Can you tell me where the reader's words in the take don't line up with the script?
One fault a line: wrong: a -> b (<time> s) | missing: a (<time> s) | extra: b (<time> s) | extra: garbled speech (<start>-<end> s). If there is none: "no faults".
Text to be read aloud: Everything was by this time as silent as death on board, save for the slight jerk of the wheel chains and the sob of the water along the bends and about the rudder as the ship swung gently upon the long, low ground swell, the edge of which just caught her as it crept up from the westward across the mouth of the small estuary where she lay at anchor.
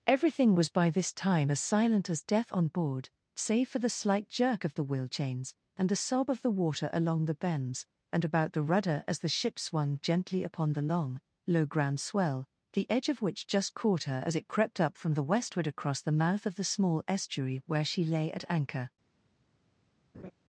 no faults